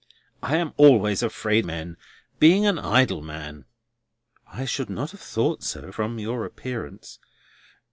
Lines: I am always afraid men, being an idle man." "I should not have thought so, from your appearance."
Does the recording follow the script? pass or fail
pass